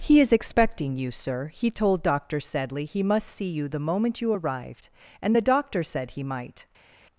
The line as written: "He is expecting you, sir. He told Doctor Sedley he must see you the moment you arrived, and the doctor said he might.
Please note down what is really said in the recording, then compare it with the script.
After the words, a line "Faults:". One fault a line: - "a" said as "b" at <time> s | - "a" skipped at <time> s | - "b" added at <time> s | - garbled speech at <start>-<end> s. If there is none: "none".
"He is expecting you, sir. He told Doctor Sedley he must see you the moment you arrived, and the doctor said he might.
Faults:
none